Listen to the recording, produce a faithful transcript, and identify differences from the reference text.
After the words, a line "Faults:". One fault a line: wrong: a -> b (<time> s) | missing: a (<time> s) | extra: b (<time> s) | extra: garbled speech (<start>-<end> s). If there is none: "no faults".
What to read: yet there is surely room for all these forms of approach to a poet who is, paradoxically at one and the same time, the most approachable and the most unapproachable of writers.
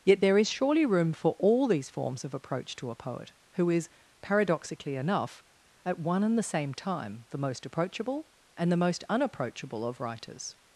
yet there is surely room for all these forms of approach to a poet who is, paradoxically enough, at one and the same time, the most approachable and the most unapproachable of writers.
Faults:
extra: enough (4.9 s)